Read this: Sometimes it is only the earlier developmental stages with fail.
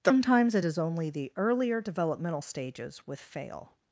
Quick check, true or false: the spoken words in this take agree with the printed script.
true